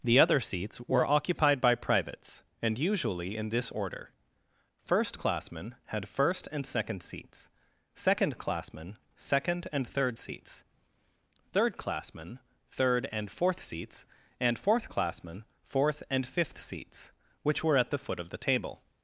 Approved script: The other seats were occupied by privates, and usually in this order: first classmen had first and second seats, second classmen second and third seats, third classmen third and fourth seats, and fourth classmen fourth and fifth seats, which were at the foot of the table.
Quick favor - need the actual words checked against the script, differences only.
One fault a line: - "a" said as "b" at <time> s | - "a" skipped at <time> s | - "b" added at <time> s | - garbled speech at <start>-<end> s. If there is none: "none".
none